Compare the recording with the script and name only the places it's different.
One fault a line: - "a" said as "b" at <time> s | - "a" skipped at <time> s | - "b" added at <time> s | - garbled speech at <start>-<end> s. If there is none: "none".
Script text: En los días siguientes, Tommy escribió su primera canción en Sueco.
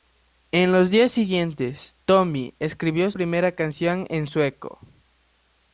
- "su" skipped at 3.1 s